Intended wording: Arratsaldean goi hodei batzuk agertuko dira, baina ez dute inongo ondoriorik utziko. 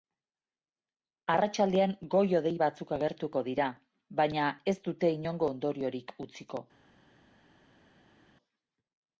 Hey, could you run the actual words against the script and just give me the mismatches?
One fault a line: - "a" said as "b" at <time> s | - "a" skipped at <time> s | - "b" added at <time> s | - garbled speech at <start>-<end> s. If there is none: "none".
none